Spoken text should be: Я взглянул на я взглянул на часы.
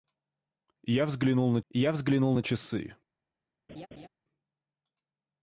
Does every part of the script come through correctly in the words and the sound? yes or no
no